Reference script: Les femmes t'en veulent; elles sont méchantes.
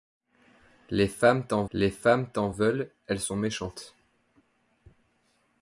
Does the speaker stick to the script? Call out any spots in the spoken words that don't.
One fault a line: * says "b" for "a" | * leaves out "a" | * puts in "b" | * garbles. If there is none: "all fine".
* puts in "les femmes t'en"